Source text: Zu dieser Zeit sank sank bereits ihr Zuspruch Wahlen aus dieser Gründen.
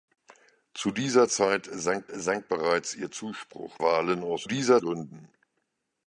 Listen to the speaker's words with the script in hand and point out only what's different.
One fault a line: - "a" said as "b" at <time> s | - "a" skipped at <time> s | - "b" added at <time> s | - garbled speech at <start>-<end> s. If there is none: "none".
none